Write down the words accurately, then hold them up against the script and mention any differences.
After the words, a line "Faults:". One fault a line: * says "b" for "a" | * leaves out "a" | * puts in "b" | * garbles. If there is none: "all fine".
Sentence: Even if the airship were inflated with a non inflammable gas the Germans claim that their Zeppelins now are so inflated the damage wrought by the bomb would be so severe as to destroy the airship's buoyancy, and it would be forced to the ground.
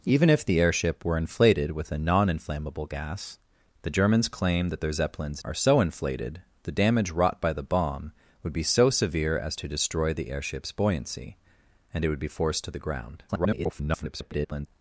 Even if the airship were inflated with a non inflammable gas the Germans claim that their Zeppelins are so inflated the damage wrought by the bomb would be so severe as to destroy the airship's buoyancy, and it would be forced to the ground. [garbled]
Faults:
* leaves out "now"
* garbles